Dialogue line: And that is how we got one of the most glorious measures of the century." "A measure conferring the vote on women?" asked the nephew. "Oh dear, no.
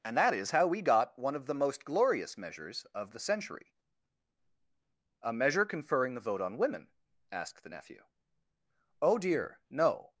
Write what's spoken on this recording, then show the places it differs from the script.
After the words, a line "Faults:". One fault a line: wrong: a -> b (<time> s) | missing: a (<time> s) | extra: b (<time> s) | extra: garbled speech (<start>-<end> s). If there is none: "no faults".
And that is how we got one of the most glorious measures of the century." "A measure conferring the vote on women?" asked the nephew. "Oh dear, no.
Faults:
no faults